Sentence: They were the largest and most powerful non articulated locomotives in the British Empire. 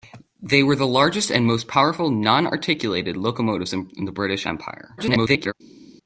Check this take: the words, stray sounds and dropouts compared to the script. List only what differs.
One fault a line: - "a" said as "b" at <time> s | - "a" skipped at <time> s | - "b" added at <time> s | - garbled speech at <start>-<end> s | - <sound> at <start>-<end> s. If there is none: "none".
- garbled speech at 5.0-5.5 s